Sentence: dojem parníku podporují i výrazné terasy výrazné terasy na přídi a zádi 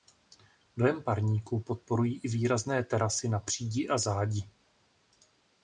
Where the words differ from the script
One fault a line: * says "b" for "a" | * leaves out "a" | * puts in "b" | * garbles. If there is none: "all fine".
* leaves out "výrazné terasy"